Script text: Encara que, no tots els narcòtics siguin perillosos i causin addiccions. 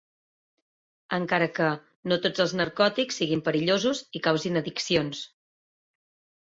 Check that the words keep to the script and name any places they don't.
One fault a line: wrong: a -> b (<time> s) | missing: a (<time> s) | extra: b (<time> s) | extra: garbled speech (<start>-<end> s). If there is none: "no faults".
no faults